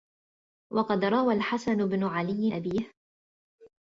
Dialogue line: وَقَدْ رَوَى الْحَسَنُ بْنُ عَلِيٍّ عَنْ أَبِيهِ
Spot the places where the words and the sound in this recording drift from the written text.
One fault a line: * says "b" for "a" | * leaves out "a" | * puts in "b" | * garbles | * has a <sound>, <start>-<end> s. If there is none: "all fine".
* leaves out "عَنْ"